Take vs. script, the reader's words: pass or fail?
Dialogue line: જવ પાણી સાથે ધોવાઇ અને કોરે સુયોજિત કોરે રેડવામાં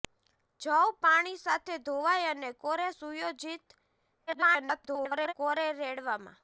fail